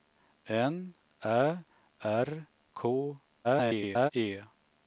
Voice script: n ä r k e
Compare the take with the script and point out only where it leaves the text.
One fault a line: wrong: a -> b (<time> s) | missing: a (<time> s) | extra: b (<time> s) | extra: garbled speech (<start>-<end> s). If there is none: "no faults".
extra: garbled speech (3.4-4.1 s)